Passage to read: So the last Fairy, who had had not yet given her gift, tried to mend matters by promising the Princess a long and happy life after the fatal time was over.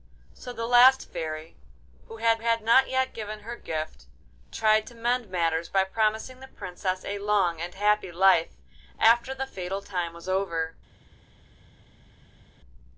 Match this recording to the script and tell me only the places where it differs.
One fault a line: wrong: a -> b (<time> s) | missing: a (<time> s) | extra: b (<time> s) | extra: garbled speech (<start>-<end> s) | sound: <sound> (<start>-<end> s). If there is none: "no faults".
no faults